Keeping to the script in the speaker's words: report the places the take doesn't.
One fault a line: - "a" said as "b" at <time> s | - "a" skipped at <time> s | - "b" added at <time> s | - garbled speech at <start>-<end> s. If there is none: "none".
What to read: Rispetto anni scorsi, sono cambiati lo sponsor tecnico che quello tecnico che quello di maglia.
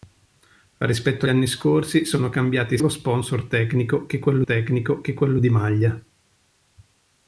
none